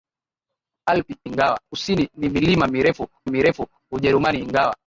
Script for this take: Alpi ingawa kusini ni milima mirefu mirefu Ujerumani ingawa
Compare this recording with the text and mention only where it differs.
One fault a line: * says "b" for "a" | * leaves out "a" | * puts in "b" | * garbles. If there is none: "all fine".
all fine